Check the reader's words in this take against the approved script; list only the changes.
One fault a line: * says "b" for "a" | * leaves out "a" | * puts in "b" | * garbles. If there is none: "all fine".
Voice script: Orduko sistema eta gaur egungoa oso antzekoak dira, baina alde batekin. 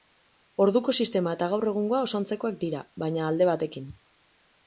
all fine